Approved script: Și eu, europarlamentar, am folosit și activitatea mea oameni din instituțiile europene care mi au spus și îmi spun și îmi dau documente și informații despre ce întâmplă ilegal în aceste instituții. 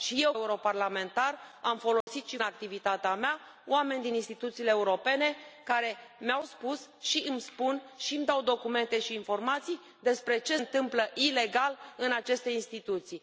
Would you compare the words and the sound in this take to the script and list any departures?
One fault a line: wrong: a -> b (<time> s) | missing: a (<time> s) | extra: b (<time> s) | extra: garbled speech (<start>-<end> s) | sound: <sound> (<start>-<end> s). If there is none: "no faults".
sound: dropout (2.0-2.1 s)